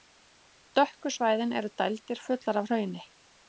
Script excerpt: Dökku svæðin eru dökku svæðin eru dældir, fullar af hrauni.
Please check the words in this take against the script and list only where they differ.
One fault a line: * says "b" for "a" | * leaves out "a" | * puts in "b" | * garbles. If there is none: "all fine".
* leaves out "dökku svæðin eru"